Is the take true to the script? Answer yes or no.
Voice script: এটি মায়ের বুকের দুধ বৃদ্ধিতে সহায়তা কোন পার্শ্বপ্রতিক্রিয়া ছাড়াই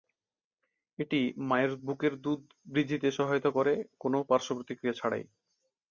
no